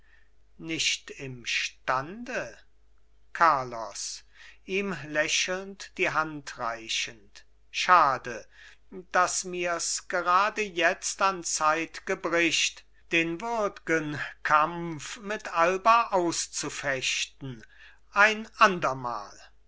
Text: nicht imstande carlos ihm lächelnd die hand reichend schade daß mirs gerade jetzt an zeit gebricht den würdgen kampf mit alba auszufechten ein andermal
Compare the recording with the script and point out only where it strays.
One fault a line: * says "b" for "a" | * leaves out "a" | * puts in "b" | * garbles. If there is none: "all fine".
all fine